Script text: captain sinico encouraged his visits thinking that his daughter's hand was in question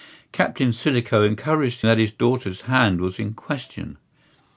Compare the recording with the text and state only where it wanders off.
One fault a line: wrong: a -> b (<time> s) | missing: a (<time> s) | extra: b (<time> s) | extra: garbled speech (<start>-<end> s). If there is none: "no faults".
missing: his visits thinking (1.8 s)